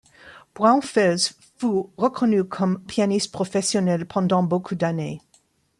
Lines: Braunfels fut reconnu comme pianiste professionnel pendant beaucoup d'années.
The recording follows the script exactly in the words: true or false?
true